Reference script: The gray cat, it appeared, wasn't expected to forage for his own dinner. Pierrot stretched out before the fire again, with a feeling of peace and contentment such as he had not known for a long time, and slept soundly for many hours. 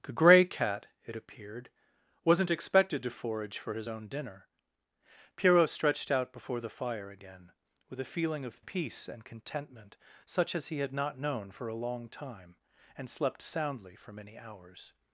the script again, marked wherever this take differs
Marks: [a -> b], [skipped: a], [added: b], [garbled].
The gray cat, it appeared, wasn't expected to forage for his own dinner. Pierrot stretched out before the fire again, with a feeling of peace and contentment such as he had not known for a long time, and slept soundly for many hours.